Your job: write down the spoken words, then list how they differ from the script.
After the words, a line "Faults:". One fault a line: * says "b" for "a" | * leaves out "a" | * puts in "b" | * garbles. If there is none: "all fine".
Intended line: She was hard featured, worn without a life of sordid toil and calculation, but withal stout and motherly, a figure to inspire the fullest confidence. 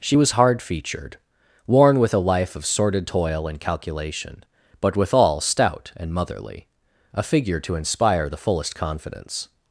She was hard featured, worn with a life of sordid toil and calculation, but withal stout and motherly, a figure to inspire the fullest confidence.
Faults:
* says "with" for "without"